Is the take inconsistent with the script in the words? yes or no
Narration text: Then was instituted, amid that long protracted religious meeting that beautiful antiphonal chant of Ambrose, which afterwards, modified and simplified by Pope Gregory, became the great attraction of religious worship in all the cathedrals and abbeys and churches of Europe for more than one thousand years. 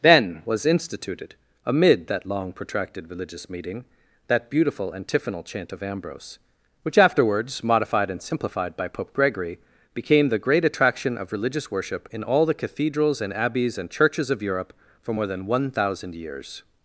no